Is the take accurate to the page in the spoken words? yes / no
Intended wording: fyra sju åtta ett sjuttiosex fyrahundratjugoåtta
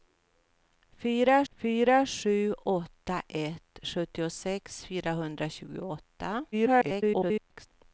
no